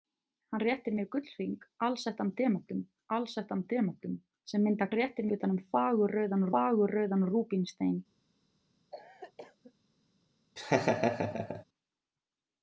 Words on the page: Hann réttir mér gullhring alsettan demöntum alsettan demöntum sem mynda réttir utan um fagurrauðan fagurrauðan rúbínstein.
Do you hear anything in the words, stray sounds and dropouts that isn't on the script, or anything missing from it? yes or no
yes